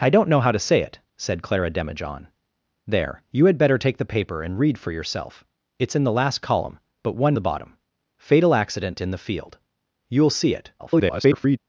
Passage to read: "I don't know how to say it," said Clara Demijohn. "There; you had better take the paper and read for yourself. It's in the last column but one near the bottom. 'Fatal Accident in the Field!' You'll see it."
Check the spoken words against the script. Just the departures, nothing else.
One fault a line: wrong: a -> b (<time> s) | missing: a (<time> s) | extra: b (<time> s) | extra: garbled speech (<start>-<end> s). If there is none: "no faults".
missing: near (7.3 s)
extra: garbled speech (10.8-11.6 s)